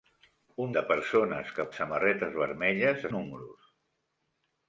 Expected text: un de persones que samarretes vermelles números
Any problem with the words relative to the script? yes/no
no